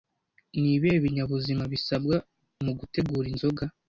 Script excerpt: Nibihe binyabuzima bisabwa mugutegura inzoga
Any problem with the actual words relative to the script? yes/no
no